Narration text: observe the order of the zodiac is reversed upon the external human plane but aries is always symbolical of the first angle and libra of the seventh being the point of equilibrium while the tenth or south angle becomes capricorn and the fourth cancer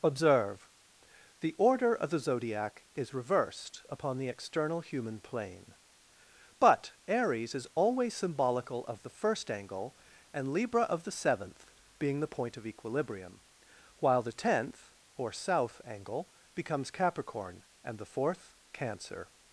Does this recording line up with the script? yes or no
yes